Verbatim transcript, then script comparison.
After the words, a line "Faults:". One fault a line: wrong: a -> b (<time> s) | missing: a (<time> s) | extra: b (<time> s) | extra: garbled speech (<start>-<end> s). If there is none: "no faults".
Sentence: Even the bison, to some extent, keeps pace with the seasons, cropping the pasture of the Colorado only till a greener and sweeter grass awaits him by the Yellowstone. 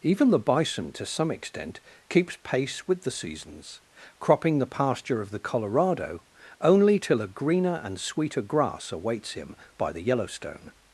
Even the bison, to some extent, keeps pace with the seasons, cropping the pasture of the Colorado only till a greener and sweeter grass awaits him by the Yellowstone.
Faults:
no faults